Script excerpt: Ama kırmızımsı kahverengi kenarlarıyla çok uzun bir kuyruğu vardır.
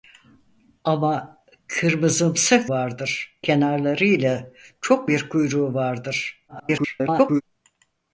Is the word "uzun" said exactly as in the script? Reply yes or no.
no